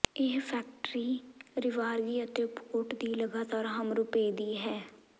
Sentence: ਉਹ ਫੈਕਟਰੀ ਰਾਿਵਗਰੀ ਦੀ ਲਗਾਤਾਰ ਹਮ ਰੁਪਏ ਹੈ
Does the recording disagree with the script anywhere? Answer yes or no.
yes